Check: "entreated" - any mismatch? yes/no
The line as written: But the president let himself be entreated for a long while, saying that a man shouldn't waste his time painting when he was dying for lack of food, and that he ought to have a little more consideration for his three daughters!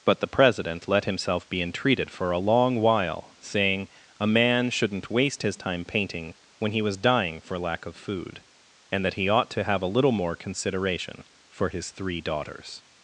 no